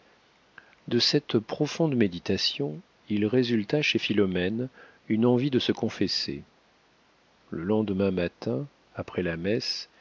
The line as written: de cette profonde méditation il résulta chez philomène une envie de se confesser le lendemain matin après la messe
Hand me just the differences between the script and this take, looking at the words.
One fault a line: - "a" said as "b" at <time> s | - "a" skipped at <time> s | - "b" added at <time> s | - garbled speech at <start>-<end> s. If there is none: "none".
none